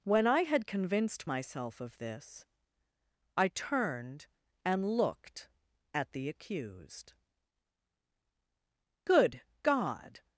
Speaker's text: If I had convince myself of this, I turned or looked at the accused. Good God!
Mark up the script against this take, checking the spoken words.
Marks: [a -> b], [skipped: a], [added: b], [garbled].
[If -> When] I had [convince -> convinced] myself of this, I turned [or -> and] looked at the accused. Good God!